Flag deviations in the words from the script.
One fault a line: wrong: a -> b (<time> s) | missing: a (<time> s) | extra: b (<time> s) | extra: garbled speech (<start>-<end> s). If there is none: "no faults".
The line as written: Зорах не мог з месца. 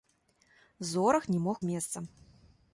no faults